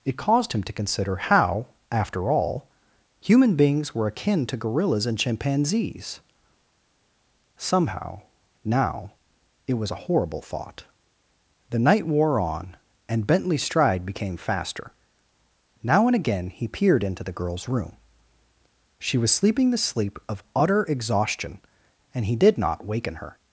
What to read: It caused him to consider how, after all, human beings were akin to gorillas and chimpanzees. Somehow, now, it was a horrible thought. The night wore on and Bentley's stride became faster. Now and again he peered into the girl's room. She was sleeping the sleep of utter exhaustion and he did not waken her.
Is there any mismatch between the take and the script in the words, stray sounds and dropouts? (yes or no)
no